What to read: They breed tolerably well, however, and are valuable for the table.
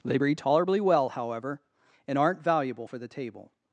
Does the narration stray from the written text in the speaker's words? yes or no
yes